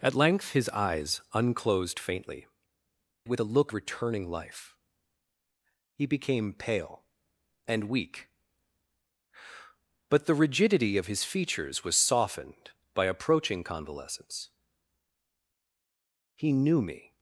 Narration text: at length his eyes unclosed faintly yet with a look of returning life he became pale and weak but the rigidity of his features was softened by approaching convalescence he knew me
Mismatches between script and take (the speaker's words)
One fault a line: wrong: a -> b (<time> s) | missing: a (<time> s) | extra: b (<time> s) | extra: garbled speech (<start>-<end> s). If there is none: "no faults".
missing: yet (2.5 s)
missing: of (3.7 s)